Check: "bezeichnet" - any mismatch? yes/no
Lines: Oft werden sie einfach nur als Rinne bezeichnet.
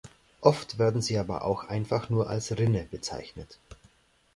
no